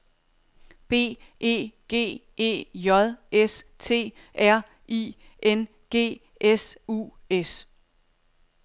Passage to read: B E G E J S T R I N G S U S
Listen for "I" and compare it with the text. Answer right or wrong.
right